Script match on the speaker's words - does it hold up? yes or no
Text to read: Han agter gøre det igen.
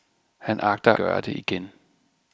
yes